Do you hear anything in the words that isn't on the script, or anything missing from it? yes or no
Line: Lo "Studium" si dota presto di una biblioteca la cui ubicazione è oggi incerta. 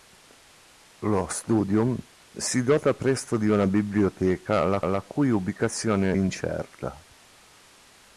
yes